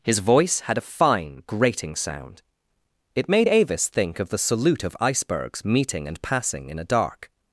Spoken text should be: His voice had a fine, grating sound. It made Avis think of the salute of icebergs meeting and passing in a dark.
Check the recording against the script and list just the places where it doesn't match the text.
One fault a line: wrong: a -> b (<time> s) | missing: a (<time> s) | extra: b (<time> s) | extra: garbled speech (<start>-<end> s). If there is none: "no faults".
no faults